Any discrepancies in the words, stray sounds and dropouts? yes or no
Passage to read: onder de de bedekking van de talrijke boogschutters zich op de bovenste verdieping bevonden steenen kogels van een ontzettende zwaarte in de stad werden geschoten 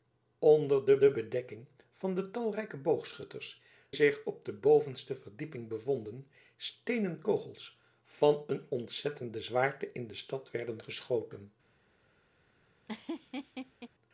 yes